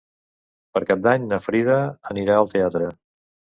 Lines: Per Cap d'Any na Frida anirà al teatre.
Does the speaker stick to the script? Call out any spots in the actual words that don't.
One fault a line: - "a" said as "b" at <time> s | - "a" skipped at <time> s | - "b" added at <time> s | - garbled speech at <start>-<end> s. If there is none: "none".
none